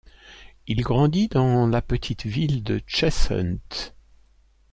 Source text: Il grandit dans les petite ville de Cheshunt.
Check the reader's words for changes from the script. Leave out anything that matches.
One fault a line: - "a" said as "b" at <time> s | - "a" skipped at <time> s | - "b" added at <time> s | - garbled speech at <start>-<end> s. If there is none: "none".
- "les" said as "la" at 1.7 s